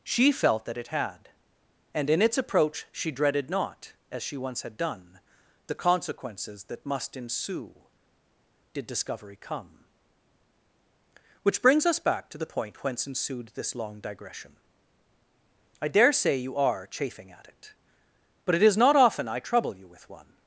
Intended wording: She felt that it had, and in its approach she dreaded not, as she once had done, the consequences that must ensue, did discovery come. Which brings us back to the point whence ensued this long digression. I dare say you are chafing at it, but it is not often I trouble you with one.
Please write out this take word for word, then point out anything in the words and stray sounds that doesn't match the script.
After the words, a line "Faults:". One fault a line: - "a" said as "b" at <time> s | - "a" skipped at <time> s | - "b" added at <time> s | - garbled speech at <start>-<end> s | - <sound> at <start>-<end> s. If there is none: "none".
She felt that it had, and in its approach she dreaded not, as she once had done, the consequences that must ensue, did discovery come. Which brings us back to the point whence ensued this long digression. I dare say you are chafing at it, but it is not often I trouble you with one.
Faults:
none